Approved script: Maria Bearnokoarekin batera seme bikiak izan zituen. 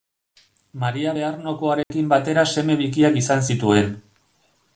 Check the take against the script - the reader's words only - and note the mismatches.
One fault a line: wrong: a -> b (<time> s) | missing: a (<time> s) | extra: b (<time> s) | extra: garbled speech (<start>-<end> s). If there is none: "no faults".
no faults